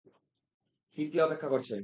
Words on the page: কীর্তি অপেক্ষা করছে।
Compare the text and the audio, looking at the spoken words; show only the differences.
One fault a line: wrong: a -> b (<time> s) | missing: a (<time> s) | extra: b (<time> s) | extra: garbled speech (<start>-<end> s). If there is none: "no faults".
no faults